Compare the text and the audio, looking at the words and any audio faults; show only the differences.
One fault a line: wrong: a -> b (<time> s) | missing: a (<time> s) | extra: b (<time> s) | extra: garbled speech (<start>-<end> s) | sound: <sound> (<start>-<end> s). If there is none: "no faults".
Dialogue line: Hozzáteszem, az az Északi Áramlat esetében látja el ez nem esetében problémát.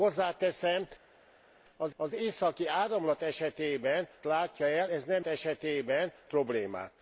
no faults